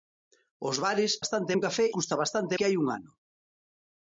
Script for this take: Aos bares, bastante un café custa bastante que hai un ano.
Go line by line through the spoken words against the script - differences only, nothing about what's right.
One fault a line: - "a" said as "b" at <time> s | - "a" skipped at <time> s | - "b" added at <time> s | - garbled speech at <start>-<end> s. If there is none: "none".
none